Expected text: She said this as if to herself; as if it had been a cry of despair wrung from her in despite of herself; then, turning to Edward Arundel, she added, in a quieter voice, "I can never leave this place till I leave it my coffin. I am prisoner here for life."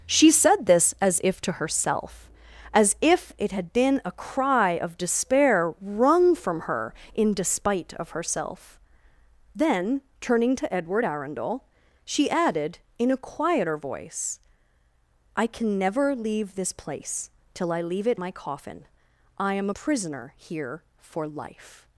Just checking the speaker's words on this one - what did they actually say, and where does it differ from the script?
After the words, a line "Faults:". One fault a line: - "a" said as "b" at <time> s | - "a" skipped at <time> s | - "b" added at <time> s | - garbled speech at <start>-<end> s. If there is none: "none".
She said this as if to herself; as if it had been a cry of despair wrung from her in despite of herself; then, turning to Edward Arundel, she added, in a quieter voice, "I can never leave this place till I leave it my coffin. I am prisoner here for life."
Faults:
none